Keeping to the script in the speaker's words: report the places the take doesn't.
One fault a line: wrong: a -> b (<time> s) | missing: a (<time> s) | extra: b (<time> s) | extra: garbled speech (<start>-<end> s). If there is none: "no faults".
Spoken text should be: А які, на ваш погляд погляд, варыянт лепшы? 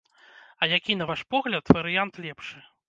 missing: погляд (1.6 s)